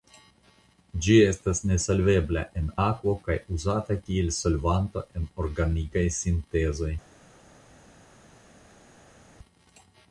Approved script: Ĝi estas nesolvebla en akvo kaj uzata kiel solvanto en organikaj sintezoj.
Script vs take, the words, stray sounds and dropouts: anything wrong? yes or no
no